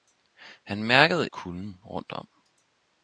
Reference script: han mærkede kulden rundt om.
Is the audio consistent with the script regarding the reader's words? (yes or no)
yes